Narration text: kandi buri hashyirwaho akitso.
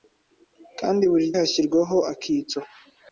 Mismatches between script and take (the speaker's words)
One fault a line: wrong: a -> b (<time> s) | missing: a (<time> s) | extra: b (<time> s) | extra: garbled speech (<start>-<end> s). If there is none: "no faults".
no faults